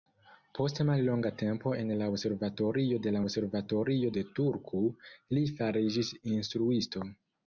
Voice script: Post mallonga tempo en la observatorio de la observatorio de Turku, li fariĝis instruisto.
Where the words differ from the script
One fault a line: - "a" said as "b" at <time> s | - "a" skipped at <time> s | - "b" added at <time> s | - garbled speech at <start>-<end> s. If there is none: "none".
none